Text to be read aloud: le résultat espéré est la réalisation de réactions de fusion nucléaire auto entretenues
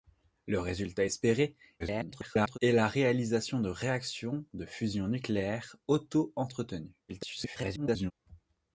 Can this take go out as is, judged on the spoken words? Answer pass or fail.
fail